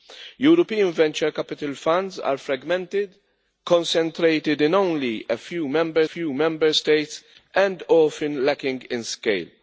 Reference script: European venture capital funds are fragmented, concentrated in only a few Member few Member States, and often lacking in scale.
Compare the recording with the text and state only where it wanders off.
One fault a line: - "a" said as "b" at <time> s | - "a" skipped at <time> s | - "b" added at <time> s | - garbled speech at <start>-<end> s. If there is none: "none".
none